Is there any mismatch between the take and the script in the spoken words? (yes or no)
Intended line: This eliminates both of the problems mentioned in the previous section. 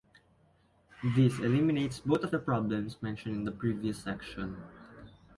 no